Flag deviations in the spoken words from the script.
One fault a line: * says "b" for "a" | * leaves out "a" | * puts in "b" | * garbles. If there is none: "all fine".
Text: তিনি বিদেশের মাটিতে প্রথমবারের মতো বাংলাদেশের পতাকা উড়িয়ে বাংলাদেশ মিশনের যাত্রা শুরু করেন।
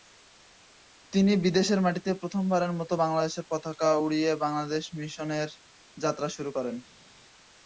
all fine